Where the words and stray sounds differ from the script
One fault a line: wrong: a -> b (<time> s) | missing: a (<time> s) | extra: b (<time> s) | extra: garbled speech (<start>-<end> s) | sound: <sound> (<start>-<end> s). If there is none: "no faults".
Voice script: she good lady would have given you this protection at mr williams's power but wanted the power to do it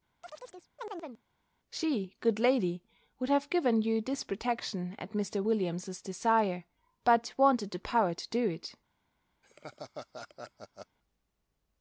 sound: chirp (0.2-1.2 s)
wrong: power -> desire (6.0 s)
sound: laugh (9.4-11.0 s)